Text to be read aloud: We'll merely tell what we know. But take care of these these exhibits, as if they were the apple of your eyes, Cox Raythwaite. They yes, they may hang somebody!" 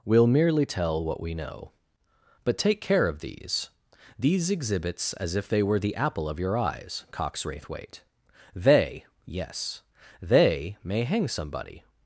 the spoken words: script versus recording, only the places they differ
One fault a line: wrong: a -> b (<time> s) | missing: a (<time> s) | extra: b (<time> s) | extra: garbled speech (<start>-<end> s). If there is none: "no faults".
no faults